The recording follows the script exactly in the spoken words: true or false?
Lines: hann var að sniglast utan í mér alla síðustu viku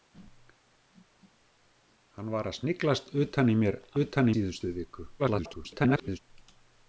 false